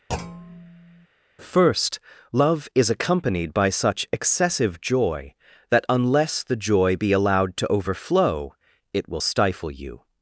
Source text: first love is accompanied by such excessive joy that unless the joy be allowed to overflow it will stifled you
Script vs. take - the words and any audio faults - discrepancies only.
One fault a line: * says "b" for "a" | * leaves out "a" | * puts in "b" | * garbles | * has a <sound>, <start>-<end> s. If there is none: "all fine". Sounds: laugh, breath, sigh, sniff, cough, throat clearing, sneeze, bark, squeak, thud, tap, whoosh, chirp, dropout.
* has a thud, 0.1-1.1 s
* says "stifle" for "stifled"